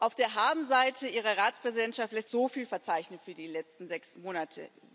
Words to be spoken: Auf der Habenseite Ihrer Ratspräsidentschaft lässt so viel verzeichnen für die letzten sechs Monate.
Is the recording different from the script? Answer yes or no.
no